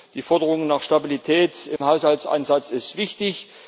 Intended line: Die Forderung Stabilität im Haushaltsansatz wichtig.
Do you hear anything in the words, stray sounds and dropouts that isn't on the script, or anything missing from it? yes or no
yes